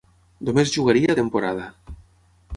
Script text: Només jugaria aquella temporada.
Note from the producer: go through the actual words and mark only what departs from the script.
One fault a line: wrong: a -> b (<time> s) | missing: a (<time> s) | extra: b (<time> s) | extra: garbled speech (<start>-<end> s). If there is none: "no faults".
missing: aquella (1.1 s)